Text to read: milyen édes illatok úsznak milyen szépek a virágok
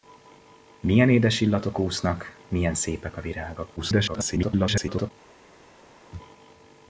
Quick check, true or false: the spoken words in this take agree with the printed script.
false